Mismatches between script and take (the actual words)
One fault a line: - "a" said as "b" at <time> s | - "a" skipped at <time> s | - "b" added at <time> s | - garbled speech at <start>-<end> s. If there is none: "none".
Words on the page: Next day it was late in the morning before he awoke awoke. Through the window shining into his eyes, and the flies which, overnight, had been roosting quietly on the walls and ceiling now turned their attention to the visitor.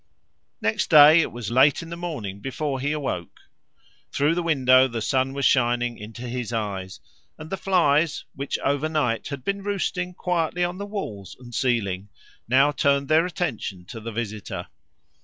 - "awoke" skipped at 3.4 s
- "the sun was" added at 4.9 s